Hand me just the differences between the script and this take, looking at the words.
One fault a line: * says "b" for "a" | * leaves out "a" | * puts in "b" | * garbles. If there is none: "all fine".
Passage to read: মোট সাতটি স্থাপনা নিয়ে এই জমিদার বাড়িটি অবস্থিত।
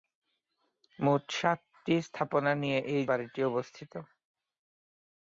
* leaves out "জমিদার"